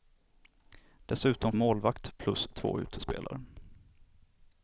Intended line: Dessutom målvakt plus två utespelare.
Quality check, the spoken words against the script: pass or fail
pass